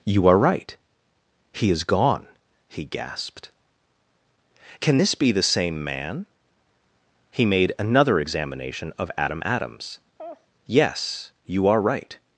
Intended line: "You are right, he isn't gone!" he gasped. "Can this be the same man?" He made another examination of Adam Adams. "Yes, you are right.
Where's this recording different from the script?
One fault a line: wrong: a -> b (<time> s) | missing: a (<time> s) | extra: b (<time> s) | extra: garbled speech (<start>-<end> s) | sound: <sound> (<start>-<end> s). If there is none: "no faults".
wrong: isn't -> is (1.7 s)
sound: laugh (10.2-10.5 s)